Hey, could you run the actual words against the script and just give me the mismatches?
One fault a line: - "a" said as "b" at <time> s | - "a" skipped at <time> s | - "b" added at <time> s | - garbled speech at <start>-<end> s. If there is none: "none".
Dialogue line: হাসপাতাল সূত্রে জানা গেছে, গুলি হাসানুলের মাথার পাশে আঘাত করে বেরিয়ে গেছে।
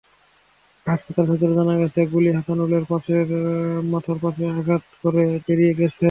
none